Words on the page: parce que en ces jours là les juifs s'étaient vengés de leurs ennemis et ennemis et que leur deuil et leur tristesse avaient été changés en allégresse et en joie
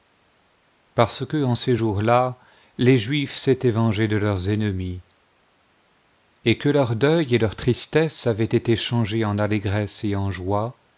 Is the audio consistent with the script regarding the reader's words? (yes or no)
no